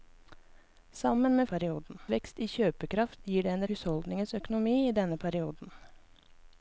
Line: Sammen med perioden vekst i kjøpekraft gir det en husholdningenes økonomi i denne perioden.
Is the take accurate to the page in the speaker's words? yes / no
yes